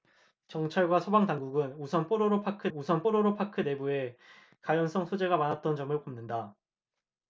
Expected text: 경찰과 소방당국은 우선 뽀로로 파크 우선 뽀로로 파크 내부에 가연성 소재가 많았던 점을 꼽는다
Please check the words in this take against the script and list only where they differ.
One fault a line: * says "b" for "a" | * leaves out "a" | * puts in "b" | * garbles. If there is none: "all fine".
all fine